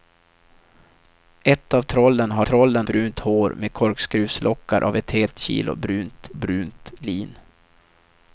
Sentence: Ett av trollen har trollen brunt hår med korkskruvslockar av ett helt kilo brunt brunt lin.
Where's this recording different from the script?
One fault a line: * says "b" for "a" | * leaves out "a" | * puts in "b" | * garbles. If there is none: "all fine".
all fine